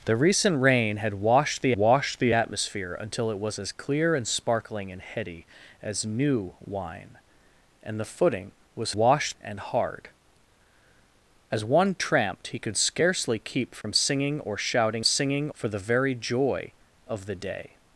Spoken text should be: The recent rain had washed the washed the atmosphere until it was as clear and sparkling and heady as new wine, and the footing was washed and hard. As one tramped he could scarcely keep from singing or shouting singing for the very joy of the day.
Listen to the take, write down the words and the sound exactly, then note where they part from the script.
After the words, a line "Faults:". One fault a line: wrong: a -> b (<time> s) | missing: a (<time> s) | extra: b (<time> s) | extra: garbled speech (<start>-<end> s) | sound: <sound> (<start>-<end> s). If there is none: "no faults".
The recent rain had washed the washed the atmosphere until it was as clear and sparkling and heady as new wine, and the footing was washed and hard. As one tramped he could scarcely keep from singing or shouting singing for the very joy of the day.
Faults:
sound: dropout (13.8-13.8 s)